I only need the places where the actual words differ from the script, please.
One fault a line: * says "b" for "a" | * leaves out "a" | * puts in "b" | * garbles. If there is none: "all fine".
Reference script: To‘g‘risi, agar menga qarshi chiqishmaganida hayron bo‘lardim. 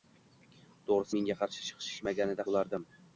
* leaves out "agar"
* leaves out "hayron"